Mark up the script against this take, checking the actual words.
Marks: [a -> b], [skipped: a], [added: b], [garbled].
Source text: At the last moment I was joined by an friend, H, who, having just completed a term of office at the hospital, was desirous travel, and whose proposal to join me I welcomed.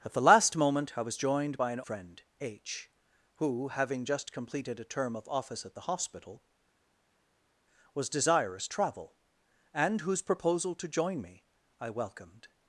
At the last moment I was joined by an friend, H, who, having just completed a term of office at the hospital, was desirous travel, and whose proposal to join me I welcomed.